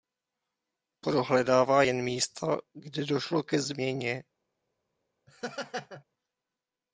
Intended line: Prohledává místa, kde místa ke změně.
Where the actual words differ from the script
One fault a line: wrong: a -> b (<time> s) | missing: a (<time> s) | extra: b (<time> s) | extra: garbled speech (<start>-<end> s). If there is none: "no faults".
extra: jen (1.8 s)
wrong: místa -> došlo (3.0 s)